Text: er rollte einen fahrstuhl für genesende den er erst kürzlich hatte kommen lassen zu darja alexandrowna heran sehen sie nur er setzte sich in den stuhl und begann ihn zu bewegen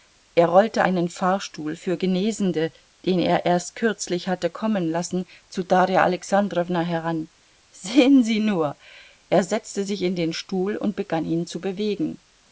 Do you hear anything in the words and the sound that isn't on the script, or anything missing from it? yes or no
no